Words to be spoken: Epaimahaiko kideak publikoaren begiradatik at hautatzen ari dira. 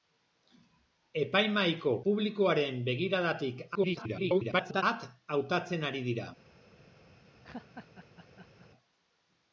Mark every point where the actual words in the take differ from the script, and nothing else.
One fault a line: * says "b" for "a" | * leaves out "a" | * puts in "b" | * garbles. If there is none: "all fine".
* leaves out "kideak"
* garbles